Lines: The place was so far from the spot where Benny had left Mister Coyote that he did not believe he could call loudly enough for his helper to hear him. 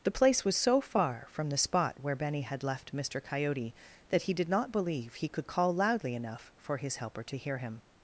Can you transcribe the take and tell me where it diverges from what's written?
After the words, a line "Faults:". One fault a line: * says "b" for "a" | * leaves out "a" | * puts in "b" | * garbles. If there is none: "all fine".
The place was so far from the spot where Benny had left Mister Coyote that he did not believe he could call loudly enough for his helper to hear him.
Faults:
all fine